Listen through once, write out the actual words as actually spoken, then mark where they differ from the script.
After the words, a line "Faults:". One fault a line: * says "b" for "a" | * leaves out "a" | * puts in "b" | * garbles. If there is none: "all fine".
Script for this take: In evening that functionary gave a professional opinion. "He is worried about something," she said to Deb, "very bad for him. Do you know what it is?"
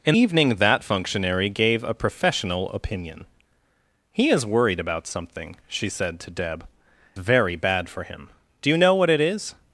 In evening that functionary gave a professional opinion. "He is worried about something," she said to Deb, "very bad for him. Do you know what it is?"
Faults:
all fine